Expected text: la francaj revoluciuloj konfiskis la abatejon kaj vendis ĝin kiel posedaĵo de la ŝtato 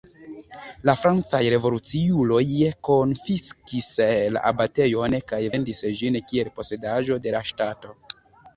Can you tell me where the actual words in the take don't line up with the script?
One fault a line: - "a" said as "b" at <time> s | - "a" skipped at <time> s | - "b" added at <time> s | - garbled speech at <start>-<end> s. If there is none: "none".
none